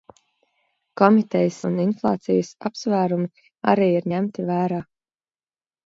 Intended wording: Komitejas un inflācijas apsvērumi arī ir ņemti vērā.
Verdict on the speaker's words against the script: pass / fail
pass